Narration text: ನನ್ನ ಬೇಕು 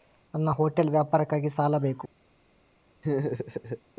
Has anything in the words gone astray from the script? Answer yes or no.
yes